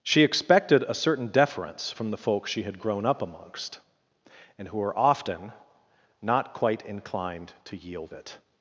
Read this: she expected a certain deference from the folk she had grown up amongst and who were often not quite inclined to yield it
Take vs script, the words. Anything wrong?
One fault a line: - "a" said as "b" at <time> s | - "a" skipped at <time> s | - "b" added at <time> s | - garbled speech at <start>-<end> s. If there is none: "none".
none